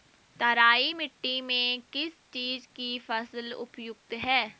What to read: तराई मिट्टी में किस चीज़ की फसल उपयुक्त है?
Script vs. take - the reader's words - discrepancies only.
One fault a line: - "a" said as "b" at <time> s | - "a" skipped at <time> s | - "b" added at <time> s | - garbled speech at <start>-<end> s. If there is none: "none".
none